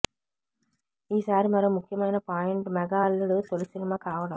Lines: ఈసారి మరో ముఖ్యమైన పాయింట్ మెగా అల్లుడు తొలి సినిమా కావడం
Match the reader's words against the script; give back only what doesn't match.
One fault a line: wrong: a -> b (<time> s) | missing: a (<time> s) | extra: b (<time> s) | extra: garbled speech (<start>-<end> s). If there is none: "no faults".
no faults